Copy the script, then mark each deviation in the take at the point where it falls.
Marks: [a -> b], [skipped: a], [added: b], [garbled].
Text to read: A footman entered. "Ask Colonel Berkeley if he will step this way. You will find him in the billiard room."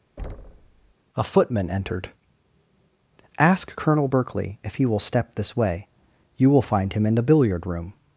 A footman entered. "Ask Colonel Berkeley if he will step this way. You will find him in the billiard room."